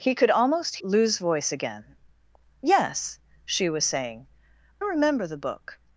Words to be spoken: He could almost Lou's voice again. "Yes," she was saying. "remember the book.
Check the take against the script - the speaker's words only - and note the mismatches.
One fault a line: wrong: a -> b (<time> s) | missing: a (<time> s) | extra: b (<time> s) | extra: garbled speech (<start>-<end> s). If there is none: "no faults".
no faults